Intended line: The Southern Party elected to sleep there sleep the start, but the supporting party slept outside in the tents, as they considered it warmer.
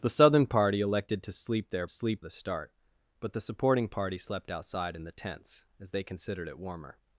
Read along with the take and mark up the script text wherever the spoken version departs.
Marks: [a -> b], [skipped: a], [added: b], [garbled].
The Southern Party elected to sleep there sleep the start, but the supporting party slept outside in the tents, as they considered it warmer.